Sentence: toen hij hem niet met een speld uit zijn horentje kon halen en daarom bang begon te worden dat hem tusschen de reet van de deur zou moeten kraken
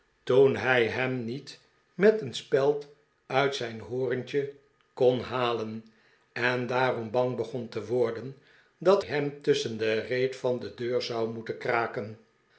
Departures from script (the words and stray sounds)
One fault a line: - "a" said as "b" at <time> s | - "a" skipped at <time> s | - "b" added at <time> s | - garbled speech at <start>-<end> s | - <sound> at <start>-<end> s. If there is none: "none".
none